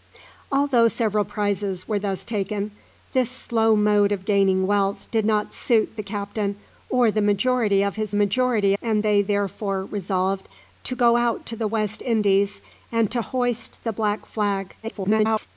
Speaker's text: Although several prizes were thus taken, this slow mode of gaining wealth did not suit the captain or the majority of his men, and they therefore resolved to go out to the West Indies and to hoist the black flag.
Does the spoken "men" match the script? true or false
false